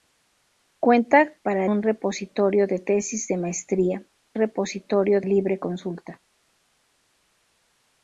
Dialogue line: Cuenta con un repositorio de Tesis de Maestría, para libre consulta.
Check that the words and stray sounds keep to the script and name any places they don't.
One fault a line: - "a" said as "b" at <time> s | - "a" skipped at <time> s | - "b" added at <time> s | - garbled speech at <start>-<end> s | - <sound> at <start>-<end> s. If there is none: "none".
- "con" said as "para" at 1.4 s
- "para" said as "repositorio" at 4.3 s